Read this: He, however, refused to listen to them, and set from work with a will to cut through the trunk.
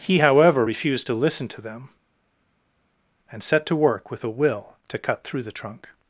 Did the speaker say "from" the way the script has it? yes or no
no